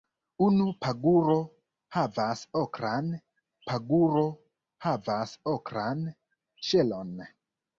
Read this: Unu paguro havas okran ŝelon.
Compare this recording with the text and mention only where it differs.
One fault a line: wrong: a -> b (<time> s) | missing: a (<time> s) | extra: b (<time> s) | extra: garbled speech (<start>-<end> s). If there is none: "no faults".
extra: paguro havas okran (3.7 s)